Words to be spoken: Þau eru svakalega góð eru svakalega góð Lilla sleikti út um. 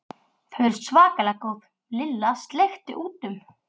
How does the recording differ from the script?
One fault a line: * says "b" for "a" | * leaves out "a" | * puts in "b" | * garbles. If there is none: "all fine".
* leaves out "eru svakalega góð"